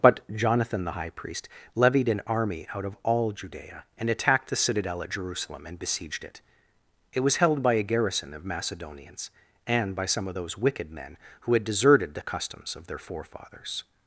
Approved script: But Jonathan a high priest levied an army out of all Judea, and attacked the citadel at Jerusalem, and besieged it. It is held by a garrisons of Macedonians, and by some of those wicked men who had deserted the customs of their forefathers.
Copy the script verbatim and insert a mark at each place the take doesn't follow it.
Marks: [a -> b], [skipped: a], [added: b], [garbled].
But Jonathan [a -> the] high priest levied an army out of all Judea, and attacked the citadel at Jerusalem, and besieged it. It [is -> was] held by a [garrisons -> garrison] of Macedonians, and by some of those wicked men who had deserted the customs of their forefathers.